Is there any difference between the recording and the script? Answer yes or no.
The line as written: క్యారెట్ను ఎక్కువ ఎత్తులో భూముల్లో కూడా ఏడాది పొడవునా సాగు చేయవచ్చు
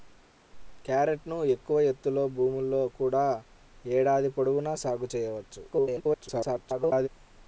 yes